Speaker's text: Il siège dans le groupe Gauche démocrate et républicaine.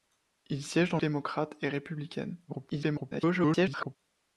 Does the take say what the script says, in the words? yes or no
no